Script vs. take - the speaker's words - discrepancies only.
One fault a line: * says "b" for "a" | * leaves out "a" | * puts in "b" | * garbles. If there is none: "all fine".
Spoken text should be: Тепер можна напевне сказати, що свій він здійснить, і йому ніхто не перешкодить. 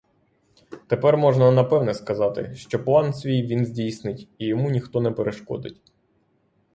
* puts in "план"